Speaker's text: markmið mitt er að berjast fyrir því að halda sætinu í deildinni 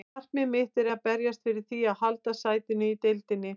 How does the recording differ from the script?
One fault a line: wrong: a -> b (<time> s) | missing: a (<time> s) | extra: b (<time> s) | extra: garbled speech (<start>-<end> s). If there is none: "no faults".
no faults